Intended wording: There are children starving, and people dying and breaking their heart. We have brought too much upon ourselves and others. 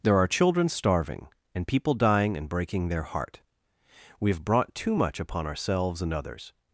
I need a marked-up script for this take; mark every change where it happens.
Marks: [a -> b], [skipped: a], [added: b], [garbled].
There are children starving, and people dying and breaking their heart. We have brought too much upon ourselves and others.